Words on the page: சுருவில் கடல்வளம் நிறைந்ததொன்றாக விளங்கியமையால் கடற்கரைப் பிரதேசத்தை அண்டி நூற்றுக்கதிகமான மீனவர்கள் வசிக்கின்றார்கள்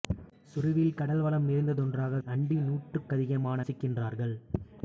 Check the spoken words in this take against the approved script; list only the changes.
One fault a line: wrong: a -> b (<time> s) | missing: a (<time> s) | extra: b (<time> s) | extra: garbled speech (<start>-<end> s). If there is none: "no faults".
missing: விளங்கியமையால் கடற்கரைப் பிரதேசத்தை (2.2 s)
missing: மீனவர்கள் (3.7 s)